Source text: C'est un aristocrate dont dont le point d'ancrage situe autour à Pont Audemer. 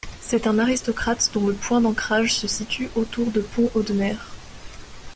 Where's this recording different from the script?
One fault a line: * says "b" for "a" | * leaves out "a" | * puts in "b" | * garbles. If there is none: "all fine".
* leaves out "dont"
* puts in "se"
* says "de" for "à"